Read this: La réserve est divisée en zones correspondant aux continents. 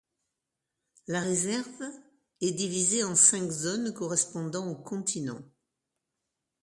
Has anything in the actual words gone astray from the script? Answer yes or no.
yes